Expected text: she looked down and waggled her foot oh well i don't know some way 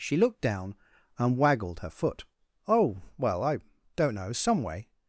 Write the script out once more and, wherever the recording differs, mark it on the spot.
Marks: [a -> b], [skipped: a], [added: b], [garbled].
she looked down and waggled her foot oh well i don't know some way